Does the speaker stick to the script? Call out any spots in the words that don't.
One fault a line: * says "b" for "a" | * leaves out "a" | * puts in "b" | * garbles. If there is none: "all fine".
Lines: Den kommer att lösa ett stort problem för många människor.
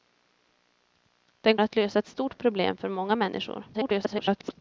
* leaves out "kommer"
* garbles